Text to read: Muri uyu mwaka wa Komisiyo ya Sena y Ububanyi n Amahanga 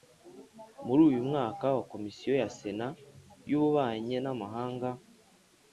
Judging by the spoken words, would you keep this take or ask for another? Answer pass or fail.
pass